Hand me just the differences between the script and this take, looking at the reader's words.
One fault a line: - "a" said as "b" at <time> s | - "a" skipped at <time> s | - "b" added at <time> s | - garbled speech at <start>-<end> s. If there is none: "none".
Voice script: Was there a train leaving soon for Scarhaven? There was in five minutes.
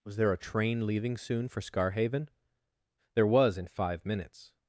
none